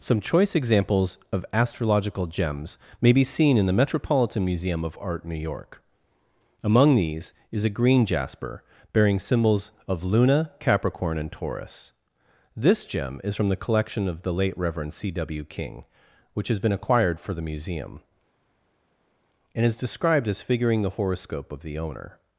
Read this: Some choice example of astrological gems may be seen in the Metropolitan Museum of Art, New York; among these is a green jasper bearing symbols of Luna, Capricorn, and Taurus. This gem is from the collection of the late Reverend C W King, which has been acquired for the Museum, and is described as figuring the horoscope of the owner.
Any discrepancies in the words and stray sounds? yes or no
yes